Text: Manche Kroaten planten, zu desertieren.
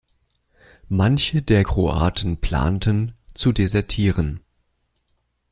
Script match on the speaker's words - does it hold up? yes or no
no